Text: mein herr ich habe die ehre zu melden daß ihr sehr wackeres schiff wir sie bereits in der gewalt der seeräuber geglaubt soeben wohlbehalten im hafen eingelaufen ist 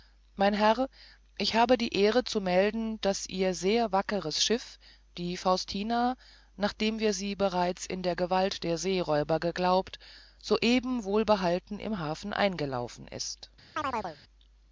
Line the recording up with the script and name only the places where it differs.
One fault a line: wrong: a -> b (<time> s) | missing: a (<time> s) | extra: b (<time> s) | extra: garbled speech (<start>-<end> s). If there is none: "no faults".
extra: die faustina nachdem (5.2 s)